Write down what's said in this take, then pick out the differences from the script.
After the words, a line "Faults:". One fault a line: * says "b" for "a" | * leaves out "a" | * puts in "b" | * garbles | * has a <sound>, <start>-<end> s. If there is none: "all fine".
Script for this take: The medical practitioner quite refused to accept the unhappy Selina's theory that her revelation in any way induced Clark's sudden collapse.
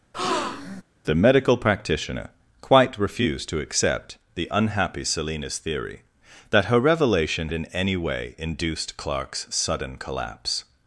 The medical practitioner quite refused to accept the unhappy Selina's theory that her revelation in any way induced Clark's sudden collapse.
Faults:
* has a breath, 0.1-0.8 s